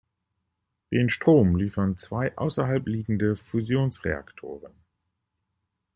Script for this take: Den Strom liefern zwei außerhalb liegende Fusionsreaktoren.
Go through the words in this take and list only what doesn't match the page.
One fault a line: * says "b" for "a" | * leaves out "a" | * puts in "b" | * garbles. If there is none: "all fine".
all fine